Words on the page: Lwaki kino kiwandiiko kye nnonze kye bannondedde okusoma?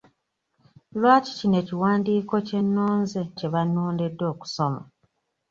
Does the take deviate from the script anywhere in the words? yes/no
no